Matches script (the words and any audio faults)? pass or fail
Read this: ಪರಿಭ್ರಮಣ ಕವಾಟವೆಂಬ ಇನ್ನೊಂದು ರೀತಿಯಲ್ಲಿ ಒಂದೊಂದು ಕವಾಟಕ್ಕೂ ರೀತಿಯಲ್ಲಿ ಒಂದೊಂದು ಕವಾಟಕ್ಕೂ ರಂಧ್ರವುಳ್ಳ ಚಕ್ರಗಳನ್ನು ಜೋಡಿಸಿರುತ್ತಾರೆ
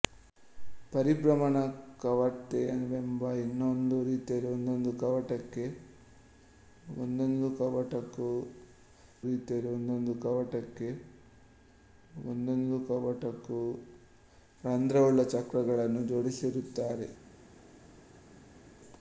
pass